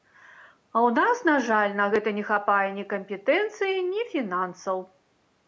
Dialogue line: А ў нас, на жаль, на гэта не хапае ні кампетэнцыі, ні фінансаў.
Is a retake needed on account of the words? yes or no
no